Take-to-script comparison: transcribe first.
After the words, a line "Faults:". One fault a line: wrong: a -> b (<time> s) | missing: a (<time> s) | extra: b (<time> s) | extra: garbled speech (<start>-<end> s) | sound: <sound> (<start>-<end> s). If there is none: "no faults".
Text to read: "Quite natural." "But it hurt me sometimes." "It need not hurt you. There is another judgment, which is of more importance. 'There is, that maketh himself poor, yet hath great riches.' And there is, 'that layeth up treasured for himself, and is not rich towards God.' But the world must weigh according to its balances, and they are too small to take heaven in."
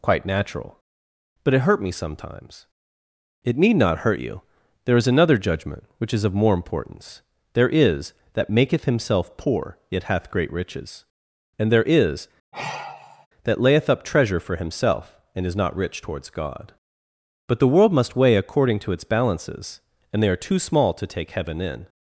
"Quite natural." "But it hurt me sometimes." "It need not hurt you. There is another judgment, which is of more importance. 'There is, that maketh himself poor, yet hath great riches.' And there is, 'that layeth up treasure for himself, and is not rich towards God.' But the world must weigh according to its balances, and they are too small to take heaven in."
Faults:
sound: sigh (12.5-13.3 s)
wrong: treasured -> treasure (14.0 s)